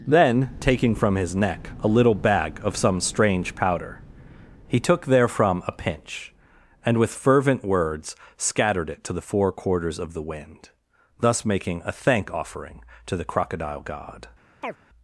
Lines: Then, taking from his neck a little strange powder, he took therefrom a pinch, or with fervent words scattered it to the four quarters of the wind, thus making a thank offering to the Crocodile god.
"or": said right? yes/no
no